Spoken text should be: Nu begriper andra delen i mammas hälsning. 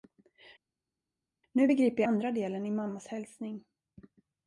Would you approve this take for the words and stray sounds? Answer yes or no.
yes